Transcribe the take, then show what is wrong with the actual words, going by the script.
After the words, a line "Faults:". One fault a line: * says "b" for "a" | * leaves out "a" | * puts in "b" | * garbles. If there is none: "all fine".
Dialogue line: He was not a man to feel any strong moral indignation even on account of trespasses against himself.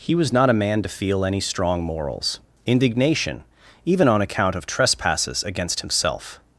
He was not a man to feel any strong morals indignation even on account of trespasses against himself.
Faults:
* says "morals" for "moral"